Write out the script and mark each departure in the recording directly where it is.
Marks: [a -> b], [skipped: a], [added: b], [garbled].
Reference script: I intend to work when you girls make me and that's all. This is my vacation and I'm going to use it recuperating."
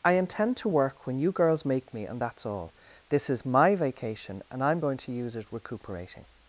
I intend to work when you girls make me and that's all. This is my vacation and I'm going to use it recuperating."